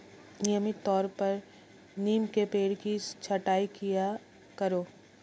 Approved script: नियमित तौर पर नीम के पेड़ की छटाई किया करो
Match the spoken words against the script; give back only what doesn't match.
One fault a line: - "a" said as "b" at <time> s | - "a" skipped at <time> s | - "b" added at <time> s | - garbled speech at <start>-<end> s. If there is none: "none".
none